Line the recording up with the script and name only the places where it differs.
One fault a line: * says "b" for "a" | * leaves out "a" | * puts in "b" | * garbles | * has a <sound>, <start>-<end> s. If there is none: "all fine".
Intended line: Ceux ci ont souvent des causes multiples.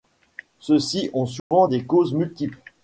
* has a dropout, 1.4-1.5 s